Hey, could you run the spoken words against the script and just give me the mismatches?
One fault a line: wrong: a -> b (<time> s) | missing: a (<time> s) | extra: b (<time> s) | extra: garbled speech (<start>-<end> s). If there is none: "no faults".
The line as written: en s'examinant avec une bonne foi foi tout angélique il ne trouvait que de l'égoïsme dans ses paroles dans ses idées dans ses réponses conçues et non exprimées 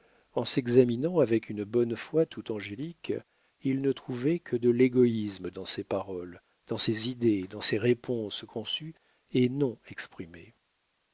missing: foi (2.2 s)